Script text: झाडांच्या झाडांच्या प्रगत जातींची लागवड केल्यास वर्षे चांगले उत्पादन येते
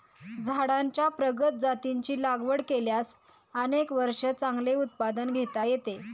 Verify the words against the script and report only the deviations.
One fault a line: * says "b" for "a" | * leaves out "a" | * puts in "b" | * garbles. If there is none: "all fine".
* leaves out "झाडांच्या"
* puts in "अनेक"
* puts in "घेता"